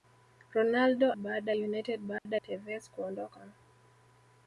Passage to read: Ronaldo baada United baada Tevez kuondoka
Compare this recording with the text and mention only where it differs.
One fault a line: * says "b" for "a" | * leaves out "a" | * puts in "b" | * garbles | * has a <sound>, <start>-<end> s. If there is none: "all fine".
* has a dropout, 2.2-2.3 s